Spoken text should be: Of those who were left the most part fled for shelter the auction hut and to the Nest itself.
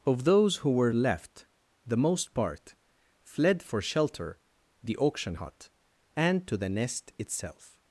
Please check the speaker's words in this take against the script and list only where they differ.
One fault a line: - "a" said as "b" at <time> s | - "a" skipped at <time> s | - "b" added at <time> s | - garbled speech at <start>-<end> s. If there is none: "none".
none